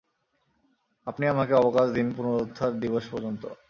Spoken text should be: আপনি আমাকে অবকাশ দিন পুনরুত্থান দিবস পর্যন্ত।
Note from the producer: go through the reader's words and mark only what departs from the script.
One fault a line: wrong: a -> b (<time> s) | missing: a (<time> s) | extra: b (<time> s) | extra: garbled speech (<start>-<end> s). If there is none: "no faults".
no faults